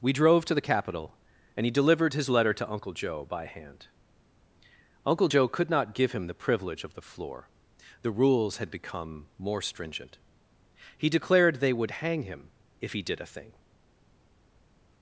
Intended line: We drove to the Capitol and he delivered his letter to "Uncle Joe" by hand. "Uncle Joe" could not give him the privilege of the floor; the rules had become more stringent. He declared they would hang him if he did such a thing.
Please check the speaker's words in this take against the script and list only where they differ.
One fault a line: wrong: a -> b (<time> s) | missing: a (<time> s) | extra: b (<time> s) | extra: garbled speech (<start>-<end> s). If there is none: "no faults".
missing: such (13.2 s)